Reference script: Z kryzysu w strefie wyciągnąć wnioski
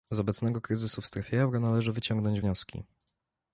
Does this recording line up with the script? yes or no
no